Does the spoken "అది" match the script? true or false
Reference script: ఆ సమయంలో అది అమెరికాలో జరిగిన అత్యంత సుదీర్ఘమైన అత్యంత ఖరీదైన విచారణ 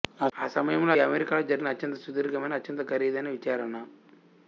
false